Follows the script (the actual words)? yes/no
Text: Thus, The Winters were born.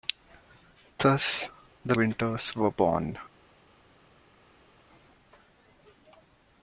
yes